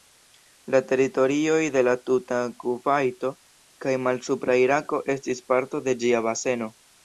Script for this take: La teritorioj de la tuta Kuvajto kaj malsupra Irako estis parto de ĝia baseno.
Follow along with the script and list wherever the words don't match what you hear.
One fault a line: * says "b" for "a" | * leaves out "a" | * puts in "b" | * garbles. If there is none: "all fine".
all fine